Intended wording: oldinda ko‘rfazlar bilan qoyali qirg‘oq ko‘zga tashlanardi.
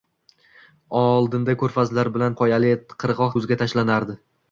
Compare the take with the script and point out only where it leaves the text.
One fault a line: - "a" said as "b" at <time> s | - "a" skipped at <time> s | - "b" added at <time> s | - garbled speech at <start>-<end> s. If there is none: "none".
none